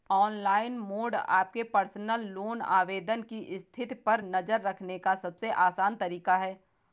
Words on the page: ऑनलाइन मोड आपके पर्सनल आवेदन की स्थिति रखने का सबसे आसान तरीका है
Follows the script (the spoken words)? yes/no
no